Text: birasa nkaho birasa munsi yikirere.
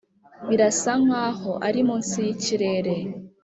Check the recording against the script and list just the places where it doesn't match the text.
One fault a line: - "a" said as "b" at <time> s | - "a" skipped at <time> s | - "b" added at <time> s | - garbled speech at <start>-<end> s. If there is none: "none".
- "birasa" said as "ari" at 1.7 s